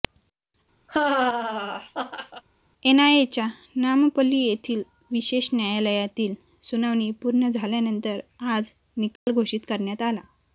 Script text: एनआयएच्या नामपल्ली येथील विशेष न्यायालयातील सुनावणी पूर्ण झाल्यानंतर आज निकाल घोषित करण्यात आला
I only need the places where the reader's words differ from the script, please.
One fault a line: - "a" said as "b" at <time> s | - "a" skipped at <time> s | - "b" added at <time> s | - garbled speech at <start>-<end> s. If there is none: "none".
none